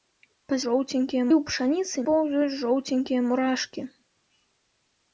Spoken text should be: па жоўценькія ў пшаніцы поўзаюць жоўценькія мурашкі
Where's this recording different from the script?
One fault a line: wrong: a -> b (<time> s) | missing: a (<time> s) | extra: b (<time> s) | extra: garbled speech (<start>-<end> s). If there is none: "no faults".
no faults